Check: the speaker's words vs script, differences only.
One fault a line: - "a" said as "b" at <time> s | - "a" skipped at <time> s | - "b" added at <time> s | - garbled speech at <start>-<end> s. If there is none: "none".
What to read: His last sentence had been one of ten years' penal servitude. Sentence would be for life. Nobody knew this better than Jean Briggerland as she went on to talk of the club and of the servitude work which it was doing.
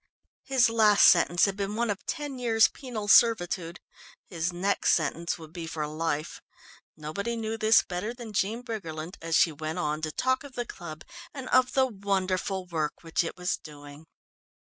- "His next" added at 4.3 s
- "servitude" said as "wonderful" at 11.9 s